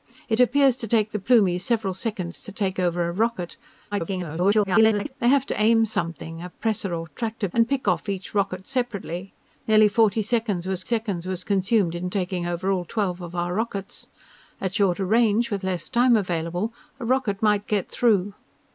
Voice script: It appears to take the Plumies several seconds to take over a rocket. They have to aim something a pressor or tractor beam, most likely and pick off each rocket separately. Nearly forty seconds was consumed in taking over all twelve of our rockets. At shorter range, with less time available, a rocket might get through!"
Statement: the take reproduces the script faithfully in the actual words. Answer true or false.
false